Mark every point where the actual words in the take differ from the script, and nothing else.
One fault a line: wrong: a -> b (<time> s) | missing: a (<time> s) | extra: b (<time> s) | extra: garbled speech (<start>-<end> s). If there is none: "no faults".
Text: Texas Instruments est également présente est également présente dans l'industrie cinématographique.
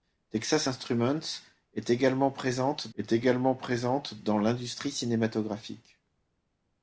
no faults